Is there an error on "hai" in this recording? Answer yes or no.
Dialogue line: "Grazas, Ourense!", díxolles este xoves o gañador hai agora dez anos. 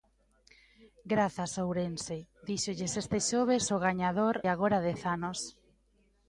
yes